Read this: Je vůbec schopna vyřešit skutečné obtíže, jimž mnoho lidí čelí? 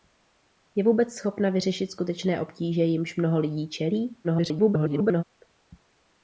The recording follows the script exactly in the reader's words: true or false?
false